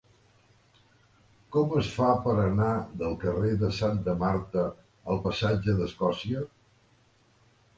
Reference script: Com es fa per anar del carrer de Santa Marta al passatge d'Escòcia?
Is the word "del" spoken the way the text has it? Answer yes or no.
yes